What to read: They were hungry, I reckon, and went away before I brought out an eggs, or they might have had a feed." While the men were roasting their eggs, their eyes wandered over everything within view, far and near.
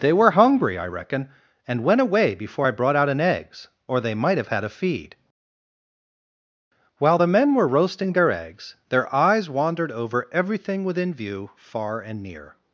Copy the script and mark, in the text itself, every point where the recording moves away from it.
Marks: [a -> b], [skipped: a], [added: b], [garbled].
They were hungry, I reckon, and went away before I brought out an eggs, or they might have had a feed." While the men were roasting their eggs, their eyes wandered over everything within view, far and near.